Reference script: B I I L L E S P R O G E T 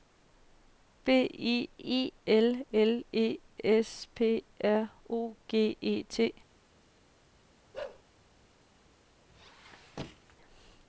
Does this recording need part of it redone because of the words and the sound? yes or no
yes